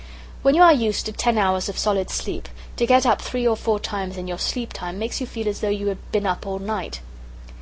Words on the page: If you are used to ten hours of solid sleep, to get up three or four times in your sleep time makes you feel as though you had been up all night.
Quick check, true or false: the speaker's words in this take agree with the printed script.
false